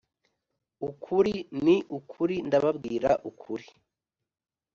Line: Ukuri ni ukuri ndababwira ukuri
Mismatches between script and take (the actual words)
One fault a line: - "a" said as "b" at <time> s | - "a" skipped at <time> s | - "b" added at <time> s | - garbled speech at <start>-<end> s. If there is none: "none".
none